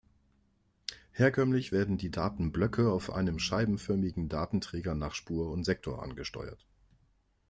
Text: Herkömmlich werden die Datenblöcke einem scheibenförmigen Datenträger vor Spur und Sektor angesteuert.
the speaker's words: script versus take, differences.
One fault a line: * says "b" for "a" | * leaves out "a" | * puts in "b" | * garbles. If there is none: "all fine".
* puts in "auf"
* says "nach" for "vor"